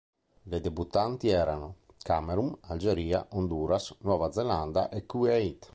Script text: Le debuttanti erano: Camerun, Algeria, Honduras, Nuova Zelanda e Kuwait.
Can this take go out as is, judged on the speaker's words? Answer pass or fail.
pass